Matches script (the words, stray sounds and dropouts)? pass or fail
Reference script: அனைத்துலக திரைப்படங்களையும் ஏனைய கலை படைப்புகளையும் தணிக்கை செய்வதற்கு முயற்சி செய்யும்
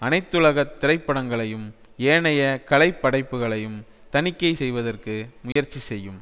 fail